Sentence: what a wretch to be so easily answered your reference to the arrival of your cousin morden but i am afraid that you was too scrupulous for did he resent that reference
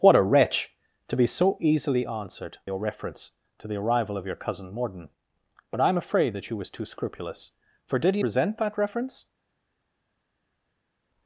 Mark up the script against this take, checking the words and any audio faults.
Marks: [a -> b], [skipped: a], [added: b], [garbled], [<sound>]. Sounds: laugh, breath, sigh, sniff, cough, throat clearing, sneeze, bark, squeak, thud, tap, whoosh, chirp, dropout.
what a wretch to be so easily answered your reference to the arrival of your cousin morden but i am afraid that you was too scrupulous for did he resent that reference